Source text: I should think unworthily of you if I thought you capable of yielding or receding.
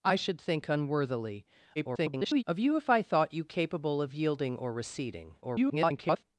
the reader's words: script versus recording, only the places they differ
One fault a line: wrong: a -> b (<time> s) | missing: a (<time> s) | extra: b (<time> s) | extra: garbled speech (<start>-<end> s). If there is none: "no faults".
extra: garbled speech (1.8-2.4 s)
extra: garbled speech (5.4-6.2 s)